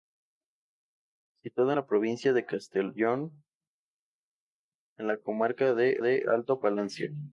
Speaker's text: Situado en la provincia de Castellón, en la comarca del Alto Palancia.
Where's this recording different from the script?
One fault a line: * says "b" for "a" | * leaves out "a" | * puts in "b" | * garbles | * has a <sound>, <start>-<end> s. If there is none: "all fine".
* puts in "del"